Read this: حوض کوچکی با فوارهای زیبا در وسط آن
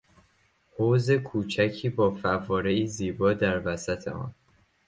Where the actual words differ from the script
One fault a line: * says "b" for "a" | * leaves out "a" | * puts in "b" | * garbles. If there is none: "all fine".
all fine